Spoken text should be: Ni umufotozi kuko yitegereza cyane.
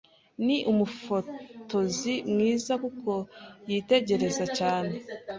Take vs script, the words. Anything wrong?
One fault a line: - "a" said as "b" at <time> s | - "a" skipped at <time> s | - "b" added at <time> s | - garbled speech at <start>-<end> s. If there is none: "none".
- "mwiza" added at 2.3 s